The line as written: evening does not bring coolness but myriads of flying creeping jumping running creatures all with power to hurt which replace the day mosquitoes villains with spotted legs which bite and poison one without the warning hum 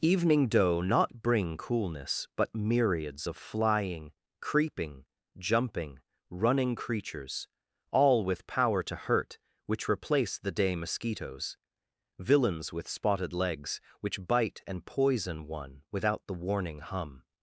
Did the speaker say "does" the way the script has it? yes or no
no